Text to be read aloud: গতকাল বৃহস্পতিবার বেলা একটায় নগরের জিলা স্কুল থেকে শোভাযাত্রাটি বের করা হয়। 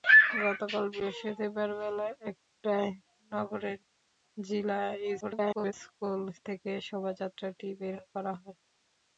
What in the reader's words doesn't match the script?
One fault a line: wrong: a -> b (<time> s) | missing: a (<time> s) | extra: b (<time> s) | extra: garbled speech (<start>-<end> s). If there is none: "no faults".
extra: garbled speech (5.2-5.7 s)